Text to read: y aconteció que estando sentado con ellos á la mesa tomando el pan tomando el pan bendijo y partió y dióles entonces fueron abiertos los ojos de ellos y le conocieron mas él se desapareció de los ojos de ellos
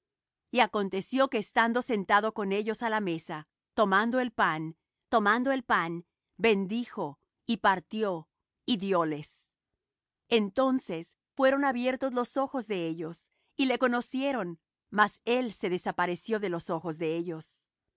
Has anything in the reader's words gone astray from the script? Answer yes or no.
no